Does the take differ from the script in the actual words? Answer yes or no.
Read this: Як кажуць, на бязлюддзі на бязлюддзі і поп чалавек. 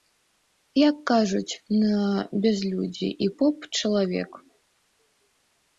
yes